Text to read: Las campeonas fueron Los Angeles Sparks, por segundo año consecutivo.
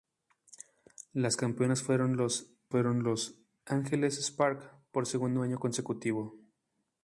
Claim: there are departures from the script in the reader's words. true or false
true